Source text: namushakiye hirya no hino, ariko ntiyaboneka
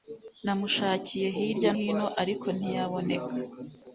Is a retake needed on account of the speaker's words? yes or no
yes